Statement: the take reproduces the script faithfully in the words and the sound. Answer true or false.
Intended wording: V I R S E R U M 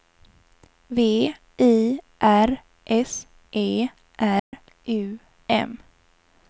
false